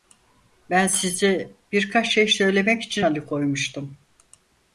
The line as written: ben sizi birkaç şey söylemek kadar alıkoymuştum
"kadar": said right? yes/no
no